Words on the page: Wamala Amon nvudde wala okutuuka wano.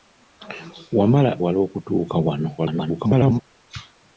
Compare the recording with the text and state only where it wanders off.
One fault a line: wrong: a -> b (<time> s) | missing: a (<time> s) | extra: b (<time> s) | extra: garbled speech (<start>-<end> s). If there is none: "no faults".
missing: Amon nvudde (1.3 s)
extra: garbled speech (2.6-3.4 s)